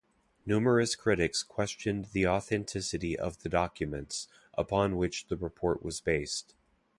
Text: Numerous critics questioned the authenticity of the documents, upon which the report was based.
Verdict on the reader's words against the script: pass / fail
pass